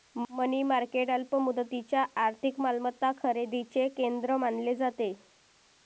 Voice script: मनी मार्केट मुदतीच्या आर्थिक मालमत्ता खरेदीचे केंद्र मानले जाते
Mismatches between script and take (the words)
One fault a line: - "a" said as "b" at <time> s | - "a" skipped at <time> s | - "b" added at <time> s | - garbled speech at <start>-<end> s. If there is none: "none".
- "अल्प" added at 1.1 s